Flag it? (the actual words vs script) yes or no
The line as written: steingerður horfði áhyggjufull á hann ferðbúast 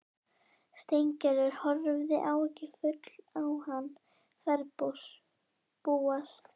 no